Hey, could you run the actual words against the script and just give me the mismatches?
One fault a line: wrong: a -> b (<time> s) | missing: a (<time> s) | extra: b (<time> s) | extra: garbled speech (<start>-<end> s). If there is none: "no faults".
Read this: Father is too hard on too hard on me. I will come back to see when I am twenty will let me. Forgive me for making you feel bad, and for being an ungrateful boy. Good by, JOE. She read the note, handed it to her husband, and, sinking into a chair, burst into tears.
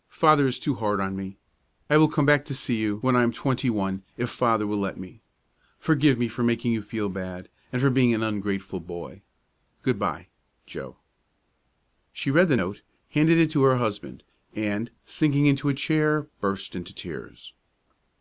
missing: too hard on (1.1 s)
extra: you (2.8 s)
extra: one if Father (3.7 s)